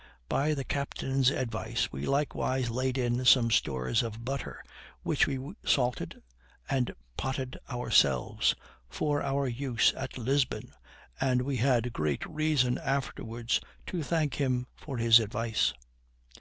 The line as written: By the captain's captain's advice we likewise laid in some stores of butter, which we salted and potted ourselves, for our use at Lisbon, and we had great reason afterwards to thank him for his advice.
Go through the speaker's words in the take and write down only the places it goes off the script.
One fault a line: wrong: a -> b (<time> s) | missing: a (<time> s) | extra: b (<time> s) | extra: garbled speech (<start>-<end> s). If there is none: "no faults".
missing: captain's (1.3 s)